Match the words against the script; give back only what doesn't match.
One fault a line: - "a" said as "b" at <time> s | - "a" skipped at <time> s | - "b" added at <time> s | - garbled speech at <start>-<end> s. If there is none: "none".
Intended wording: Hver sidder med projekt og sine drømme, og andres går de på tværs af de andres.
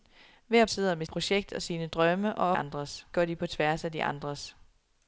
none